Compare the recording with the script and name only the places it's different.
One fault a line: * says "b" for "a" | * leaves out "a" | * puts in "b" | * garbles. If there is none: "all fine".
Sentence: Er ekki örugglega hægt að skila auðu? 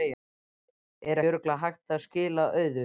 * leaves out "ekki"